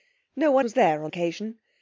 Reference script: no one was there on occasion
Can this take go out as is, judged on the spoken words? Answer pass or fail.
pass